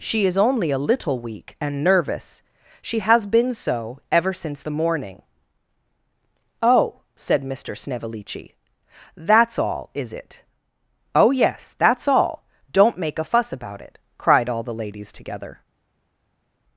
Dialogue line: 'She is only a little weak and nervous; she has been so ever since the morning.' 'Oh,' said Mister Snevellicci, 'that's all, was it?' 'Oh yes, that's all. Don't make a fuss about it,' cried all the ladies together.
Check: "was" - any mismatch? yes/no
yes